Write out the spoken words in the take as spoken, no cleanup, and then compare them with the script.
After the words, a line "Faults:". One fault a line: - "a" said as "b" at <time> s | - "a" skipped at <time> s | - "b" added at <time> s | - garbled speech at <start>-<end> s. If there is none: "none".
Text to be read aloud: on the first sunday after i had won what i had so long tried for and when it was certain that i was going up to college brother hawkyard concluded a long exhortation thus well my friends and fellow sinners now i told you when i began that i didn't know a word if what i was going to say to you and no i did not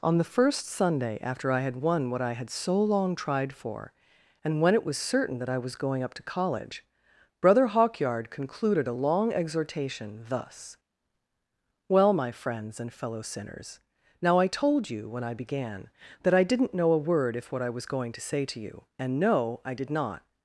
on the first sunday after i had won what i had so long tried for and when it was certain that i was going up to college brother hawkyard concluded a long exhortation thus well my friends and fellow sinners now i told you when i began that i didn't know a word if what i was going to say to you and no i did not
Faults:
none